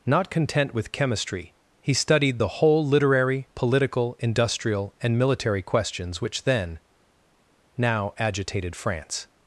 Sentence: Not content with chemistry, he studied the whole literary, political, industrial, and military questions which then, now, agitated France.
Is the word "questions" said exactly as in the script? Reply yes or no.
yes